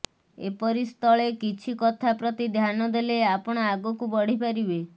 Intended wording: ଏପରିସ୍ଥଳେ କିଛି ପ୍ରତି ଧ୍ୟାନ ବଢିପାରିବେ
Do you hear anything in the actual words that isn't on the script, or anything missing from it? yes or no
yes